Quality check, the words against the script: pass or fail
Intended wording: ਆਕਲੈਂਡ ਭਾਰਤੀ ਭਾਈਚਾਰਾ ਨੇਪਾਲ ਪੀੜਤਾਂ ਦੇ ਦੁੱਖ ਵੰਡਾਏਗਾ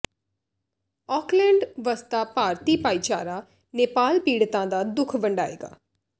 fail